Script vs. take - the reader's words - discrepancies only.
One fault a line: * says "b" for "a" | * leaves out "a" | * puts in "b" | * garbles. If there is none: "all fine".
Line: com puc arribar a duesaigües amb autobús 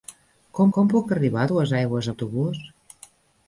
* puts in "com"
* leaves out "amb"